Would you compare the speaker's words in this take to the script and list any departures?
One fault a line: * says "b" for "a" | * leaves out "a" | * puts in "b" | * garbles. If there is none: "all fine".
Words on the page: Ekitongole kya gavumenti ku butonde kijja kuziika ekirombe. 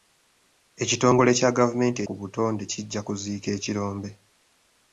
all fine